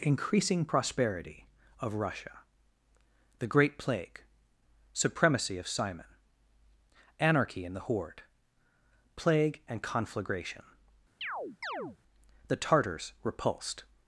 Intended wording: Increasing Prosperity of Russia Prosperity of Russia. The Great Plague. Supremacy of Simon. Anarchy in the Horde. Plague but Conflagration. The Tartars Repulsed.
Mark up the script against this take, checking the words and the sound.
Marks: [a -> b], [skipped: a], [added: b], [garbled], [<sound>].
Increasing Prosperity of Russia [skipped: Prosperity of Russia.] The Great Plague. Supremacy of Simon. Anarchy in the Horde. Plague [but -> and] Conflagration. [chirp] The Tartars Repulsed.